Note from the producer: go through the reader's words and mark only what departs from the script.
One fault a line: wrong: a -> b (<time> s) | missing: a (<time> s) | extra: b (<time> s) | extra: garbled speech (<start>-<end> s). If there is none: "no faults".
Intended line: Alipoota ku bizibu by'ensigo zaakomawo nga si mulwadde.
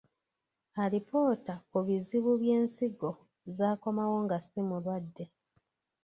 no faults